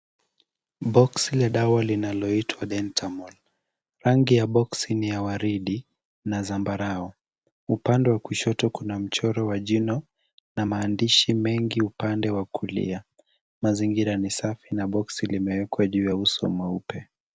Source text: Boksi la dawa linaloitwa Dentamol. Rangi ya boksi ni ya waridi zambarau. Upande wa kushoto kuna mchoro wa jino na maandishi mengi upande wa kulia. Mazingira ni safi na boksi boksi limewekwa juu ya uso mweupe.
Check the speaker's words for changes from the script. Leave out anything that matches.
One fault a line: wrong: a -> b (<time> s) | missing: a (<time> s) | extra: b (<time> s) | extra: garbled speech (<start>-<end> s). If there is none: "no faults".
extra: na (6.3 s)
missing: boksi (15.3 s)